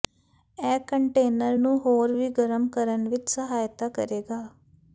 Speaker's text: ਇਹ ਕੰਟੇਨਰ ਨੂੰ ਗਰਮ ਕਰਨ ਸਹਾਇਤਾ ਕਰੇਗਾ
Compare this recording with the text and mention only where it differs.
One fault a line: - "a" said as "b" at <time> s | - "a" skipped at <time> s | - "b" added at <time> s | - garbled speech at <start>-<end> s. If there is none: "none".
- "ਹੋਰ ਵੀ" added at 1.8 s
- "ਵਿੱਚ" added at 3.1 s